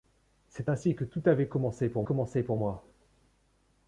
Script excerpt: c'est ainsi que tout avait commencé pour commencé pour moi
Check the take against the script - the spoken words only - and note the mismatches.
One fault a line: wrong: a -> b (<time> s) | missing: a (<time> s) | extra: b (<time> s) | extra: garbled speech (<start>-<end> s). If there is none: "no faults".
no faults